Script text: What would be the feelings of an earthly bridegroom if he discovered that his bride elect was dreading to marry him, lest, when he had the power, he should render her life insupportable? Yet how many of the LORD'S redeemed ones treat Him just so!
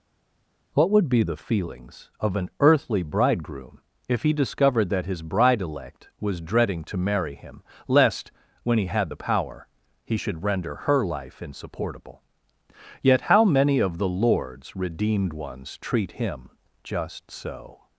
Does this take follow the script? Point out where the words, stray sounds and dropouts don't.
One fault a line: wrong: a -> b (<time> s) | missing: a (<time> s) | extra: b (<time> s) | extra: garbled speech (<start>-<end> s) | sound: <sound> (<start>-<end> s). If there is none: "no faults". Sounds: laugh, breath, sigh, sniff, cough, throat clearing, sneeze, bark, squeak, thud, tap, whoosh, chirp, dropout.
no faults